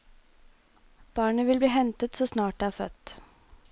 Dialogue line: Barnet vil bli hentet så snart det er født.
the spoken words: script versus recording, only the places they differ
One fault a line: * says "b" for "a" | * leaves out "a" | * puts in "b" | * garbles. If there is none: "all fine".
all fine